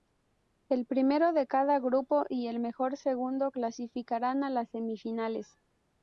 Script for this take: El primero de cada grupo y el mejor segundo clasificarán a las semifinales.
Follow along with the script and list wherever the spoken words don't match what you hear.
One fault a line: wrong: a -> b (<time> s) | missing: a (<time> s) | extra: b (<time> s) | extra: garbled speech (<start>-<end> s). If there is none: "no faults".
no faults